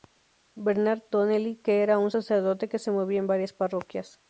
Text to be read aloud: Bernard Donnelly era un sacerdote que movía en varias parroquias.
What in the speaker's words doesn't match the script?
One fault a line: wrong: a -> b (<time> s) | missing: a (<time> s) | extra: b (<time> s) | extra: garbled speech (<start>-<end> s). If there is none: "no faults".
extra: que (1.6 s)
extra: se (2.8 s)